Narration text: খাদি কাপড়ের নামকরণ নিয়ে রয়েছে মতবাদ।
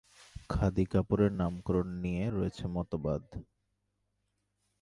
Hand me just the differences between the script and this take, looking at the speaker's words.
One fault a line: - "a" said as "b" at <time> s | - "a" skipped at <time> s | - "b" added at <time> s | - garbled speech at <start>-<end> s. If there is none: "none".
none